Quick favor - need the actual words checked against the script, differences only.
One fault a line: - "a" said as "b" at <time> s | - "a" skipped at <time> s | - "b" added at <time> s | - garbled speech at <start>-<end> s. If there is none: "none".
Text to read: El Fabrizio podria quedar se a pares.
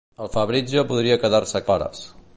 none